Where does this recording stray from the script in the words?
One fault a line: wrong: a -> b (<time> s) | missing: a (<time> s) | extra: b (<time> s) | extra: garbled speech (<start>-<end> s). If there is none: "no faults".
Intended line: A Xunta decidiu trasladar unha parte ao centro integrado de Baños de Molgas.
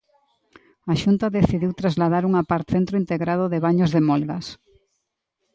missing: ao (2.7 s)